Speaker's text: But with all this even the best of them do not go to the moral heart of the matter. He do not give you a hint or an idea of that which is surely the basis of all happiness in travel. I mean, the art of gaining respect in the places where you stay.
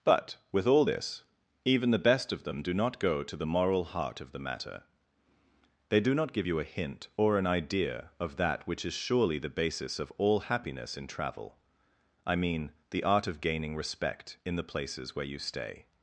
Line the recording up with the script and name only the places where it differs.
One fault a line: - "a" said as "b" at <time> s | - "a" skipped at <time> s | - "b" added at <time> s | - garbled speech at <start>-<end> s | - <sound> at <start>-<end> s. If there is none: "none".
- "He" said as "They" at 5.9 s